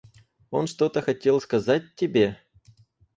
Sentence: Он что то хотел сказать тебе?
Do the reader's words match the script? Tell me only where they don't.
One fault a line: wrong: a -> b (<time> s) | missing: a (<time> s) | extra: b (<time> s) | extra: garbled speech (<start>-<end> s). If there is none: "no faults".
no faults